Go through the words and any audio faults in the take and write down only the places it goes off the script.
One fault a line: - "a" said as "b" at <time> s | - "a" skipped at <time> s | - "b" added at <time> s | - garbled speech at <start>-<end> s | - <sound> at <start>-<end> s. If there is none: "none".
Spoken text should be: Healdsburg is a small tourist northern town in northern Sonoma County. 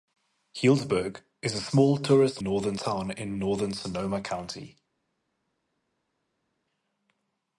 none